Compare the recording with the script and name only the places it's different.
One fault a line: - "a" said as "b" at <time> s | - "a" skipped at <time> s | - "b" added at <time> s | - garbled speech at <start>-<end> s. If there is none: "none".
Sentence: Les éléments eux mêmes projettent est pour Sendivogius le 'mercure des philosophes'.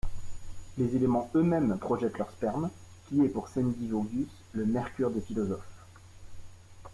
- "leur sperme qui" added at 2.2 s